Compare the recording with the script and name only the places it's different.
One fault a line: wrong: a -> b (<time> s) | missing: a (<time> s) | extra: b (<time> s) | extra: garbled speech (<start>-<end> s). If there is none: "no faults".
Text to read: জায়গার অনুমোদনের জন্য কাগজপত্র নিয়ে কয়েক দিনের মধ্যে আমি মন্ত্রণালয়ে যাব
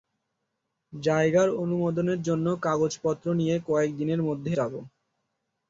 missing: আমি মন্ত্রণালয়ে (4.5 s)